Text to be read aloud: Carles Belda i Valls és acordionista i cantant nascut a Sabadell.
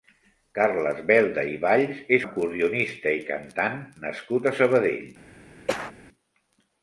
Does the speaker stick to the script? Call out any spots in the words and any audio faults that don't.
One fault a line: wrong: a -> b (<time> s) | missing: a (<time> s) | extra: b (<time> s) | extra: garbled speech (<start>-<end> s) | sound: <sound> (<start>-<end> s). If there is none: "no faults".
sound: cough (5.7-5.9 s)